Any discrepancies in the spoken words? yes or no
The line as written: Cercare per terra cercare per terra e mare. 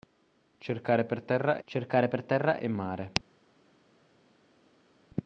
no